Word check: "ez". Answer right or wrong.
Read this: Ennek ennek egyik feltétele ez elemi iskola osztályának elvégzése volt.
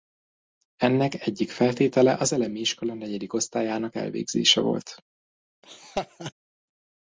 wrong